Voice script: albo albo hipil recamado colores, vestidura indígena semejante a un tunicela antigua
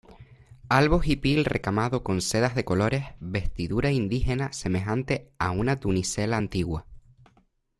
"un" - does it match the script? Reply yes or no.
no